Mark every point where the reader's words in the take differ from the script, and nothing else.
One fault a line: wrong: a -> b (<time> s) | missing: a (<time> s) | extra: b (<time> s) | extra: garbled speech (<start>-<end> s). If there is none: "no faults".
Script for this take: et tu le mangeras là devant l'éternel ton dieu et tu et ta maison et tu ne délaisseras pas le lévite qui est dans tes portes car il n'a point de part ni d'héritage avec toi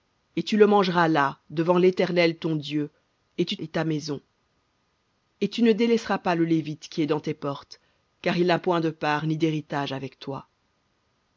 no faults